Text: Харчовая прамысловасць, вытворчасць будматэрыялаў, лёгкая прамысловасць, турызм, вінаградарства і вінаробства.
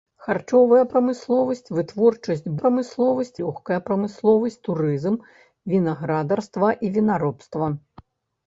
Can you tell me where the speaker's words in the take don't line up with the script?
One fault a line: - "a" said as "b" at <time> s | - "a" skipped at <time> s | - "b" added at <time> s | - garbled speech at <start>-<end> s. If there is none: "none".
- "будматэрыялаў" said as "прамысловасць" at 2.6 s